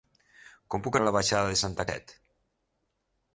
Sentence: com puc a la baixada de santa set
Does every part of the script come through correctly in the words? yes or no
yes